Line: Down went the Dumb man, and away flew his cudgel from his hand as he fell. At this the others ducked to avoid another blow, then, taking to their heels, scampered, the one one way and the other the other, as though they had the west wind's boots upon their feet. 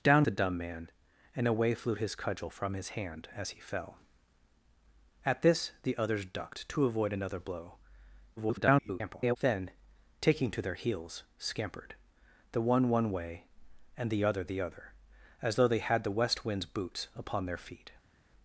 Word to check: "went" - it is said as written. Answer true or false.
false